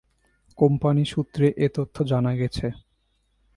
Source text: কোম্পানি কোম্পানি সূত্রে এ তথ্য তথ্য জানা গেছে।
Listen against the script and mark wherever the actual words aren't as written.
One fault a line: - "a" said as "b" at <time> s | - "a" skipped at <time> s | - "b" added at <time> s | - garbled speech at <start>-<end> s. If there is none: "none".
- "কোম্পানি" skipped at 1.0 s
- "তথ্য" skipped at 2.0 s